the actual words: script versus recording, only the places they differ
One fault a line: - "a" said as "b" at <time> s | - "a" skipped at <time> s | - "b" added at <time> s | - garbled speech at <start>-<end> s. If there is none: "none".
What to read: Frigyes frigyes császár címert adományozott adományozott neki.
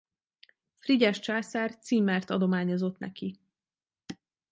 - "frigyes" skipped at 1.2 s
- "adományozott" skipped at 3.0 s